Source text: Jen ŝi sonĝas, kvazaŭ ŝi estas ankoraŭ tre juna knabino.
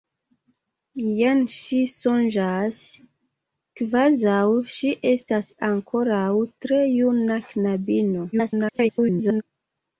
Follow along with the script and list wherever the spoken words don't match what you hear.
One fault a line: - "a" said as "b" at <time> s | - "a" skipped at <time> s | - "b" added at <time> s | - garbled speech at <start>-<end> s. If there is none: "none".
- garbled speech at 8.3-9.4 s